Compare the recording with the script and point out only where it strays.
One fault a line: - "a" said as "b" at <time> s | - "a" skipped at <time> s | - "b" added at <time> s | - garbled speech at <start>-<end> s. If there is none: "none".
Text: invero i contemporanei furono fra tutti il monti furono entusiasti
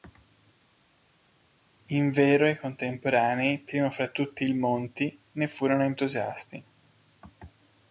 - "furono" said as "primo" at 3.6 s
- "ne" added at 5.3 s